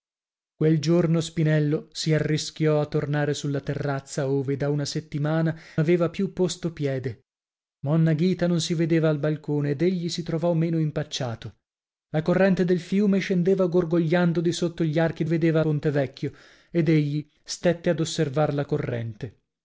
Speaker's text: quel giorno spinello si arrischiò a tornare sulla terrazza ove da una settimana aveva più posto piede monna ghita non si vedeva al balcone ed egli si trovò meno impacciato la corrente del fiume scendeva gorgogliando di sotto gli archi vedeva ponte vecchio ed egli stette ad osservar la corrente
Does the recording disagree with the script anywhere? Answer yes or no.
no